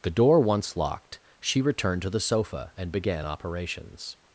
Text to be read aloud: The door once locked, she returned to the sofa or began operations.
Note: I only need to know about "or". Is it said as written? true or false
false